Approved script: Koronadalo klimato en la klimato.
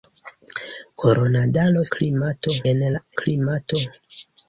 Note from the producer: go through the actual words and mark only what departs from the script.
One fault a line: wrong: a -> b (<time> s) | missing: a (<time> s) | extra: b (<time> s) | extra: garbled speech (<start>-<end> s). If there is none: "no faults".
no faults